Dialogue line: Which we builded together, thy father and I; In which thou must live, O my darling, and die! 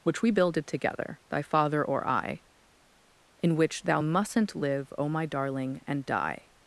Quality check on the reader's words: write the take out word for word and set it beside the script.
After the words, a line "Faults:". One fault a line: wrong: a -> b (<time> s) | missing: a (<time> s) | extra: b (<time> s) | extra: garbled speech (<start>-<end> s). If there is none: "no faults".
Which we builded together, thy father or I; In which thou mustn't live, O my darling, and die!
Faults:
wrong: and -> or (1.8 s)
wrong: must -> mustn't (4.0 s)